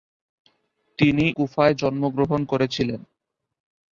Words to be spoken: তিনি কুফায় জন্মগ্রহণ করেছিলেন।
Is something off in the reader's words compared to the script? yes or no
no